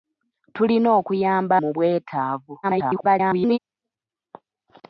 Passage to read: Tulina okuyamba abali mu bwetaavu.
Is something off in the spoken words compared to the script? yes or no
yes